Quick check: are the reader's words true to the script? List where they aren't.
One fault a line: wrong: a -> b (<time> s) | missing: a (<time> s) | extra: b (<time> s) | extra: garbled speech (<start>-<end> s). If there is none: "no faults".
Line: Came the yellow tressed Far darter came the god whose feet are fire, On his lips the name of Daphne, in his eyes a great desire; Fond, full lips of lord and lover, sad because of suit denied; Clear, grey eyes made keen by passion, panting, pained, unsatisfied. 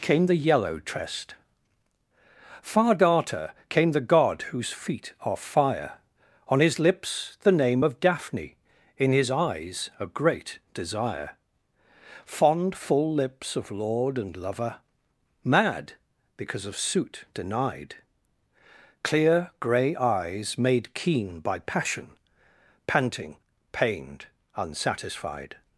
wrong: sad -> mad (15.4 s)